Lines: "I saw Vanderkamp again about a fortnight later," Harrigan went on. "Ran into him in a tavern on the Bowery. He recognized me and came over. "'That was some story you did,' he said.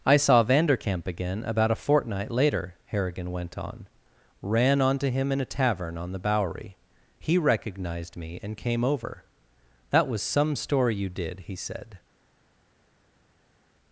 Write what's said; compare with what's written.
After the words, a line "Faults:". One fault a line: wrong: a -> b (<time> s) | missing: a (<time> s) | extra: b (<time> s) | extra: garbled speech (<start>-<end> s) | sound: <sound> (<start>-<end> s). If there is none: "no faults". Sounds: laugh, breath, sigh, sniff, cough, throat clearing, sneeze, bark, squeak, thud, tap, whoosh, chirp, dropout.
"I saw Vanderkamp again about a fortnight later," Harrigan went on. "Ran onto him in a tavern on the Bowery. He recognized me and came over. "'That was some story you did,' he said.
Faults:
wrong: into -> onto (4.8 s)